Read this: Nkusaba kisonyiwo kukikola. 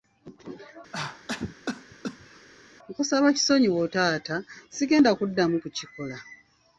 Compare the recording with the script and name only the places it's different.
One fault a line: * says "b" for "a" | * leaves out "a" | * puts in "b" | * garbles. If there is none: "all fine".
* puts in "taata sigenda kuddamu"